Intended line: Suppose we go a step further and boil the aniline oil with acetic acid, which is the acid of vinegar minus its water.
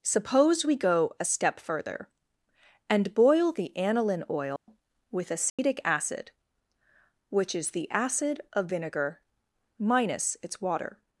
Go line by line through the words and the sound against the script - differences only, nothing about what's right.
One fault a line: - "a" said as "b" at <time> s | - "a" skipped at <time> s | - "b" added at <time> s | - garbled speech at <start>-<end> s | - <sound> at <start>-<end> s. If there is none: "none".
- dropout at 4.6-4.7 s
- dropout at 5.5-5.6 s